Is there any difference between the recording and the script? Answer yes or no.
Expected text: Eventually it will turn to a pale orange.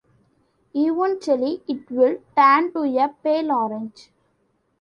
no